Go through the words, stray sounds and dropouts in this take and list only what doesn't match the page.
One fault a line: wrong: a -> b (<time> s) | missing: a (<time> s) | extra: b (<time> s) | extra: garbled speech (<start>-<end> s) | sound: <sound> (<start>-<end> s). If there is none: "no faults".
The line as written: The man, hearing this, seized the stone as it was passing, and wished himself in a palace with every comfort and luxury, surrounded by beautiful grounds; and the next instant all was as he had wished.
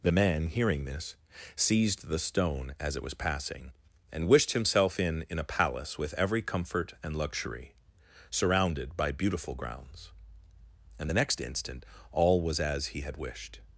extra: in (5.3 s)